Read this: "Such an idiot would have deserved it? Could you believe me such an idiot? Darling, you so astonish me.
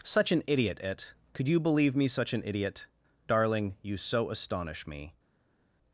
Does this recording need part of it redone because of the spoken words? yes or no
yes